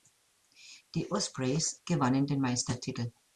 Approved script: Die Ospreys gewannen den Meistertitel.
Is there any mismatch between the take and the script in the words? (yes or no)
no